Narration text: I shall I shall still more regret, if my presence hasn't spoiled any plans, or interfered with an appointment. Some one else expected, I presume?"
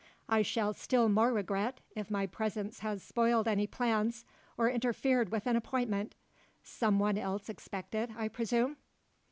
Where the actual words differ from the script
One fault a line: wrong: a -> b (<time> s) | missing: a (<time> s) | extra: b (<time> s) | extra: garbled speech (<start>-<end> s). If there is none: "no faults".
missing: I shall (0.7 s)
wrong: hasn't -> has (2.8 s)